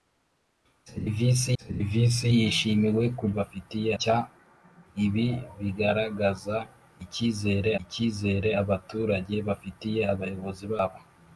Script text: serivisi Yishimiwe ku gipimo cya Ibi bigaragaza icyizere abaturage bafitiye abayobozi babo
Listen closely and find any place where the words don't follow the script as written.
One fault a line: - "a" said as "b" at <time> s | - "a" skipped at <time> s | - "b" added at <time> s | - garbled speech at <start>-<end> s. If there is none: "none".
- "serivisi" added at 1.6 s
- "gipimo" said as "bafitiye" at 3.4 s
- "icyizere" added at 7.8 s